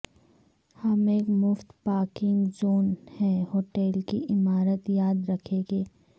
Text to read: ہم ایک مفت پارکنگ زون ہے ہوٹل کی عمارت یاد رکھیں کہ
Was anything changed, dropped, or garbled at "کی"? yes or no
no